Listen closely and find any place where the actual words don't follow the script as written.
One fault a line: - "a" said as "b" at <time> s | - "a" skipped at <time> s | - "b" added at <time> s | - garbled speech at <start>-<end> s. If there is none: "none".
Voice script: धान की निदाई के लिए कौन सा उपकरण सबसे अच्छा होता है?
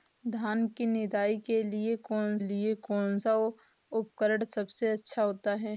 - "लिए कौन" added at 2.4 s